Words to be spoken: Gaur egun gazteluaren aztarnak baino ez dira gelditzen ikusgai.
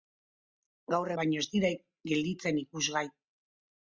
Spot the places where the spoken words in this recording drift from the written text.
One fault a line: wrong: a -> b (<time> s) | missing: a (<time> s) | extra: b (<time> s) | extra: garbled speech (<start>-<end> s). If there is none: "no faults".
missing: egun gazteluaren aztarnak (1.1 s)